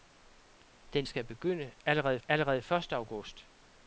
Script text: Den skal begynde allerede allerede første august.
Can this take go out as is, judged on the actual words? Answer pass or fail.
pass